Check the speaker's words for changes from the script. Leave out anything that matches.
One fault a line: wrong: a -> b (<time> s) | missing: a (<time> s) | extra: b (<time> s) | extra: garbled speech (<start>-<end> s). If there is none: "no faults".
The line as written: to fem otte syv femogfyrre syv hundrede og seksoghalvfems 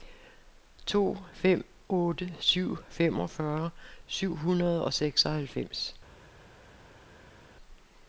no faults